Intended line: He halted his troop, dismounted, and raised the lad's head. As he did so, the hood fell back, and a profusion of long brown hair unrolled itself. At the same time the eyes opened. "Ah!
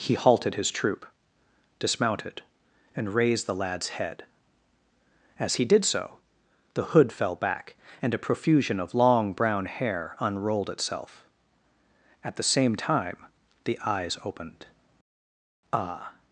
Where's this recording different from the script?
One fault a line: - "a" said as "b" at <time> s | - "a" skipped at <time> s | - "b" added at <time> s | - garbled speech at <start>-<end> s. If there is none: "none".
none